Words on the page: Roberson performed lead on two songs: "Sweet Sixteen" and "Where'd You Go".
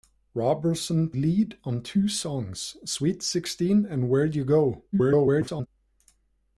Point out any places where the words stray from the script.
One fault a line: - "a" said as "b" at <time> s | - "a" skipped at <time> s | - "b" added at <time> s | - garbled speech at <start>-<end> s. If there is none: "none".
- "performed" skipped at 1.1 s
- garbled speech at 4.9-5.7 s